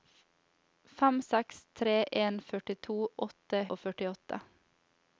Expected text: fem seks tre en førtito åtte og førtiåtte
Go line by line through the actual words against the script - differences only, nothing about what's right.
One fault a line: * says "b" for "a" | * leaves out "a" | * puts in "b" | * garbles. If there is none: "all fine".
all fine